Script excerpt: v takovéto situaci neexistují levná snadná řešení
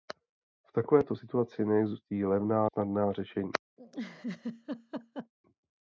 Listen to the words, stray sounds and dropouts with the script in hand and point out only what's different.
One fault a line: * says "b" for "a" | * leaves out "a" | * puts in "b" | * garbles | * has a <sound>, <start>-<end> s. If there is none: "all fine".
* has a laugh, 3.8-5.3 s